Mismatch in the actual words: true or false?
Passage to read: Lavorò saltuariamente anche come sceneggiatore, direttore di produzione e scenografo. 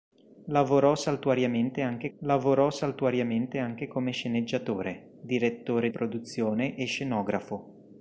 true